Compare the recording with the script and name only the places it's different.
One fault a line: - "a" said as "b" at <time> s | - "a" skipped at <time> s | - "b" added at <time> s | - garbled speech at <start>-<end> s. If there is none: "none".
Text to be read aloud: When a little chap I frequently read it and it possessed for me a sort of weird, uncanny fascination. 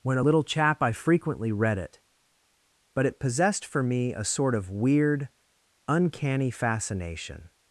- "and" said as "but" at 3.0 s